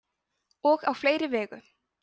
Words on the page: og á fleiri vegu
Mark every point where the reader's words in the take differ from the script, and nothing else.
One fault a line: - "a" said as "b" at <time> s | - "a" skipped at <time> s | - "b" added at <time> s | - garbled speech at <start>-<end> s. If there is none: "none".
none